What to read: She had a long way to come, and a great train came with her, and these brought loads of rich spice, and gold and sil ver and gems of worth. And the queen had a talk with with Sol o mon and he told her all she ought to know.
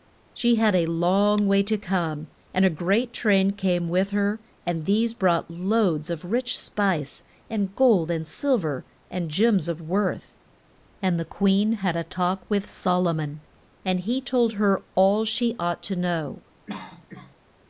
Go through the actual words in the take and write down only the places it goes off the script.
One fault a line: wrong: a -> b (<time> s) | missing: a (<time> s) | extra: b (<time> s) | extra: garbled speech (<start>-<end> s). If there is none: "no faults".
missing: with (12.7 s)